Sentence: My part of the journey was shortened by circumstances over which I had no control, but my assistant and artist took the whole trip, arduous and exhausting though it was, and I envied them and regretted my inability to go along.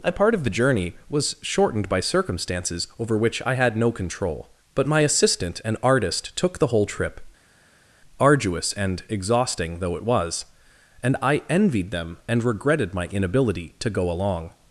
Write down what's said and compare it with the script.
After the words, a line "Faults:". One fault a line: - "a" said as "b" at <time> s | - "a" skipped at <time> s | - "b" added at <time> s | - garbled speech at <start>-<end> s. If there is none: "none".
A part of the journey was shortened by circumstances over which I had no control, but my assistant and artist took the whole trip, arduous and exhausting though it was, and I envied them and regretted my inability to go along.
Faults:
- "My" said as "A" at 0.0 s